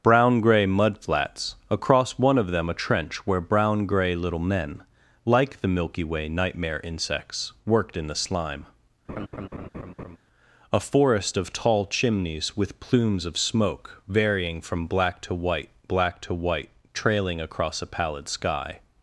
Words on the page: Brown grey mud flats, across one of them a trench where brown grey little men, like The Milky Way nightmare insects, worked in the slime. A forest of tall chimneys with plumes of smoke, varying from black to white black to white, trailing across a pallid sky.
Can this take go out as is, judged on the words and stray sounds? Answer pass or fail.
fail